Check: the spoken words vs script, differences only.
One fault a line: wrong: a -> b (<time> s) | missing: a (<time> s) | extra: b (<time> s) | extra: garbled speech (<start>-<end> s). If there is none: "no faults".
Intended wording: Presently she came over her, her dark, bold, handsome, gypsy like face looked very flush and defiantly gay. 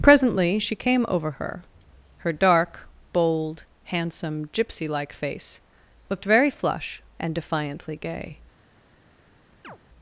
no faults